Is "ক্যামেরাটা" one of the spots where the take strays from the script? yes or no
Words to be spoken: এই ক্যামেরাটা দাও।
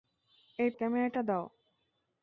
no